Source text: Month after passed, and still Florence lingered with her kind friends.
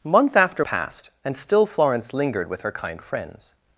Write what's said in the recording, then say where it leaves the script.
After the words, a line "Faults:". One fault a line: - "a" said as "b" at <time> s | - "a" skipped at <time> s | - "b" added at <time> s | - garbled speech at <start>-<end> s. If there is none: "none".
Month after passed, and still Florence lingered with her kind friends.
Faults:
none